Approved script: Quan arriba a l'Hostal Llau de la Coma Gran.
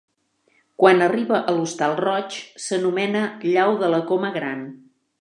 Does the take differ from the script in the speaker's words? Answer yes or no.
yes